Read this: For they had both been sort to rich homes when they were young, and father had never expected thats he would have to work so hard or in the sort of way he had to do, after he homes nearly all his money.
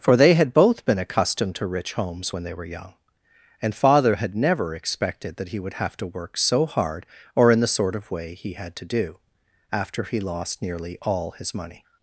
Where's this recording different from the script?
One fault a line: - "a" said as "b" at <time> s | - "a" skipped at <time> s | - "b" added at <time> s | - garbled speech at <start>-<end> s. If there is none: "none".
- "sort" said as "accustomed" at 1.0 s
- "thats" said as "that" at 5.3 s
- "homes" said as "lost" at 10.2 s